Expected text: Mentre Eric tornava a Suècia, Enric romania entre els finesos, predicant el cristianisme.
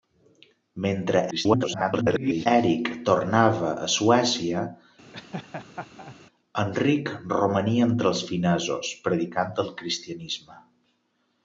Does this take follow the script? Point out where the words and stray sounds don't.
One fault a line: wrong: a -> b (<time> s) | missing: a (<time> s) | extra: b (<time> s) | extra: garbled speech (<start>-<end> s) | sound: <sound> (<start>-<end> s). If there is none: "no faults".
extra: garbled speech (1.3-2.5 s)
sound: laugh (5.1-6.2 s)